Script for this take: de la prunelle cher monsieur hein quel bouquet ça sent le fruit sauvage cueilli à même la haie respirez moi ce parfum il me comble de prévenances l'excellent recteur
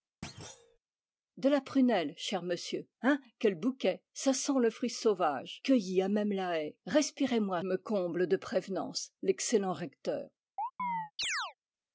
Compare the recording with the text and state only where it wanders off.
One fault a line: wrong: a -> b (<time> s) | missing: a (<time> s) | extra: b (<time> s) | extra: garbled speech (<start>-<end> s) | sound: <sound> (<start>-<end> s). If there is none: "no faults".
sound: thud (0.2-0.8 s)
missing: ce parfum il (7.6 s)
sound: chirp (10.6-11.5 s)